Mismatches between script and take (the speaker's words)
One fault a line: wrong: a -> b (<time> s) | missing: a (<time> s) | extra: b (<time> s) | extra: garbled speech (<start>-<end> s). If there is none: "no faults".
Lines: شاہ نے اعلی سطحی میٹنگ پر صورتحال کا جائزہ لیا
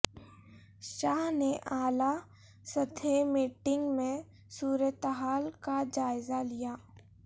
wrong: پر -> میں (4.0 s)